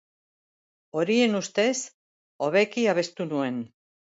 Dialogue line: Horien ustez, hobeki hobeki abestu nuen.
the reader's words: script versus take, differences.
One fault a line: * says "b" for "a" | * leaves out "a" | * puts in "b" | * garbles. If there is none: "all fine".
* leaves out "hobeki"